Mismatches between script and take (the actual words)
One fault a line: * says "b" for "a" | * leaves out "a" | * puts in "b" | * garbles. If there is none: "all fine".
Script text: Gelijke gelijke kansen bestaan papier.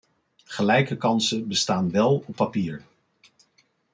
* leaves out "gelijke"
* puts in "wel op"